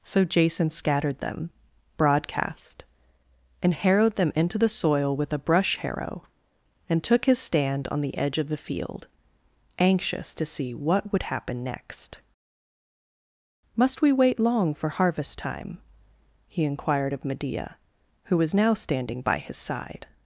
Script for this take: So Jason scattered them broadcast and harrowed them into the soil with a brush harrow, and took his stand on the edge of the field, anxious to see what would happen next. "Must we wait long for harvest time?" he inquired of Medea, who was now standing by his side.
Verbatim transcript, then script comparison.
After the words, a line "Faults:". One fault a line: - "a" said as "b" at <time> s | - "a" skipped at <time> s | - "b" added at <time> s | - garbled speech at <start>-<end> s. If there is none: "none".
So Jason scattered them broadcast and harrowed them into the soil with a brush harrow, and took his stand on the edge of the field, anxious to see what would happen next. "Must we wait long for harvest time?" he inquired of Medea, who was now standing by his side.
Faults:
none